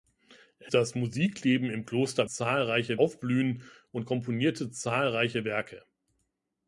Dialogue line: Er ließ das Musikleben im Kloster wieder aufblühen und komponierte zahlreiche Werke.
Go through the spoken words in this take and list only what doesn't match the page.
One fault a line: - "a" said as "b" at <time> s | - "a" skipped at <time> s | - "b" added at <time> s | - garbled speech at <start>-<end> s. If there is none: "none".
- "ließ" skipped at 0.7 s
- "wieder" said as "zahlreiche" at 2.2 s